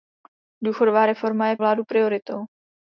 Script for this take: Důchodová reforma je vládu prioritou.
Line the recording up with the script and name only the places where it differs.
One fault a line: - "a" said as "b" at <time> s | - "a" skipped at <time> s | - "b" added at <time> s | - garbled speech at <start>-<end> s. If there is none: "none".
none